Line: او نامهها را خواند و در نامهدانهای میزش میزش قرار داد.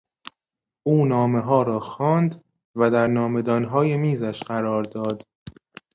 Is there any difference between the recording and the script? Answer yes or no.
yes